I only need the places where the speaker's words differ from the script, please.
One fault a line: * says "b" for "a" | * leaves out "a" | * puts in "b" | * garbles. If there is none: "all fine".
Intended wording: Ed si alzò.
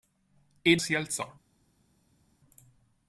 all fine